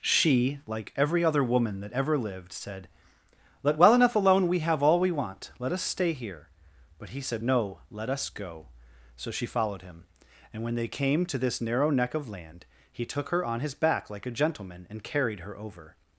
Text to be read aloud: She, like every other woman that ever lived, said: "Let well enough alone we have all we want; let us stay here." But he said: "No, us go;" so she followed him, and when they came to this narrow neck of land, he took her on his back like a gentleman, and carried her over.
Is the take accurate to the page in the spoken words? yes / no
no